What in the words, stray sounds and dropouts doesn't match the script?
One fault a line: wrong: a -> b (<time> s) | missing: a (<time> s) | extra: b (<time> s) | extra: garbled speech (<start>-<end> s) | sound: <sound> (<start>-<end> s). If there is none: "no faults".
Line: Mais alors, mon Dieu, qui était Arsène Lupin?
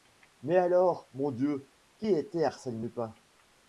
no faults